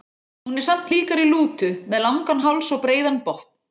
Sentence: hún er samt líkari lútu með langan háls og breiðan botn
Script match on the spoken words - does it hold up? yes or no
yes